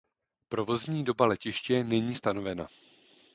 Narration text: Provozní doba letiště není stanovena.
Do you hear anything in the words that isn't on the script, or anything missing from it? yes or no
no